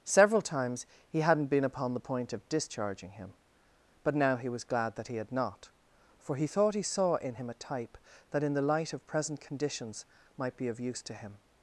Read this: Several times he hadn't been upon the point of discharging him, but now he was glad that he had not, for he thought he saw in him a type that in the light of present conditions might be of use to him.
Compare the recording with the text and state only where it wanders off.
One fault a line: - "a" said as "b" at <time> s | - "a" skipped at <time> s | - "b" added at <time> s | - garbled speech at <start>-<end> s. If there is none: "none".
none